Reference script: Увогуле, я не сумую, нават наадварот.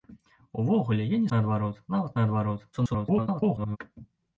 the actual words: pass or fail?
fail